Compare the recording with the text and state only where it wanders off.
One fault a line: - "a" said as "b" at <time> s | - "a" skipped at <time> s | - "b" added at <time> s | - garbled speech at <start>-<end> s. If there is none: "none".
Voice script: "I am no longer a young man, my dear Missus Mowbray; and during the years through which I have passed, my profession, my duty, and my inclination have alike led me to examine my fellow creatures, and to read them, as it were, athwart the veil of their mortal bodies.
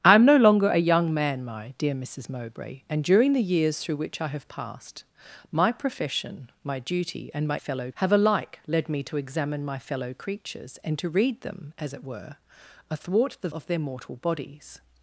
- "inclination" said as "fellow" at 7.6 s
- "veil" skipped at 13.5 s